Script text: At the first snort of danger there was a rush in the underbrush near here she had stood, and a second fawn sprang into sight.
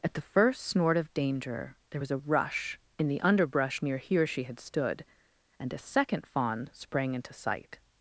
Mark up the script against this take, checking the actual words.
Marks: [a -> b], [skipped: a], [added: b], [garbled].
At the first snort of danger there was a rush in the underbrush near here she had stood, and a second fawn sprang into sight.